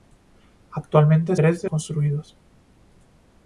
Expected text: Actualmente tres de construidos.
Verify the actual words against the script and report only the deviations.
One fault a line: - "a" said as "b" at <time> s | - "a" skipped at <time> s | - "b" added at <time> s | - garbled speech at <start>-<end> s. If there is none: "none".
none